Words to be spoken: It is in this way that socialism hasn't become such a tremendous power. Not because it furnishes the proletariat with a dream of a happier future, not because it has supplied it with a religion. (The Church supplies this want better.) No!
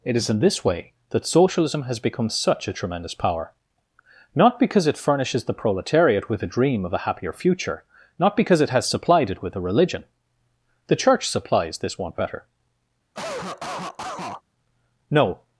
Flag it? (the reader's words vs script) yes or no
yes